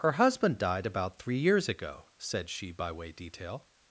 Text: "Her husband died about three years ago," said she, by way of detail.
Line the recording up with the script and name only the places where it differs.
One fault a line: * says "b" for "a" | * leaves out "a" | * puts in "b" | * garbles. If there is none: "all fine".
* leaves out "of"